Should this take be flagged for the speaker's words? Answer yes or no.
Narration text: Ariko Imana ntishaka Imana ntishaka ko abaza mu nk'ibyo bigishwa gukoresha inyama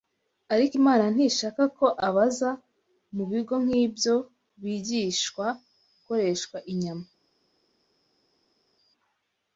yes